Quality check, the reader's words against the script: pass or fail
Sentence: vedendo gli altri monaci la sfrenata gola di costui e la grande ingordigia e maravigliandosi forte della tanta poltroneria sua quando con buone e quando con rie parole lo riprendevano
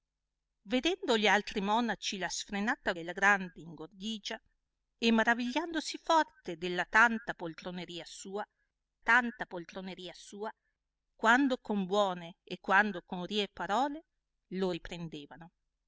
fail